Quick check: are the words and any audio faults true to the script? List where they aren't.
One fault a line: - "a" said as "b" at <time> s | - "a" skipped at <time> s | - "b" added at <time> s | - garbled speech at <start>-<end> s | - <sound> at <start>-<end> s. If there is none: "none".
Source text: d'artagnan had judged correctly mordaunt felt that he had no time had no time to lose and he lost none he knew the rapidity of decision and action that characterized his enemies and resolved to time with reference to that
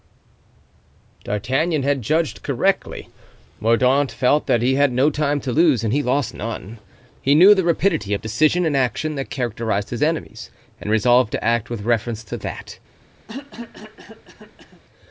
- "had no time" skipped at 5.4 s
- "time" said as "act" at 11.4 s
- cough at 13.3-14.8 s